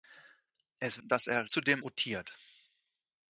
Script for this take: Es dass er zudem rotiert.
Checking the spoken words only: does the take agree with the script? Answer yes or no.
yes